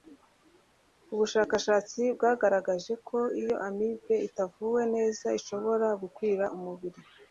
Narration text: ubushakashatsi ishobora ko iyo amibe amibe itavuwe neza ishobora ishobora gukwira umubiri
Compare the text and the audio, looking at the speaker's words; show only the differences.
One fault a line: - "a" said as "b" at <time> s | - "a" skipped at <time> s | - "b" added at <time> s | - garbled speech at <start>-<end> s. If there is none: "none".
- "ishobora" said as "bwagaragaje" at 2.1 s
- "amibe" skipped at 4.1 s
- "ishobora" skipped at 5.9 s